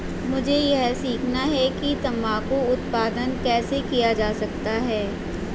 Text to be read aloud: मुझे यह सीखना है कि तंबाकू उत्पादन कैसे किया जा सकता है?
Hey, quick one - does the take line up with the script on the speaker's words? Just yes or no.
yes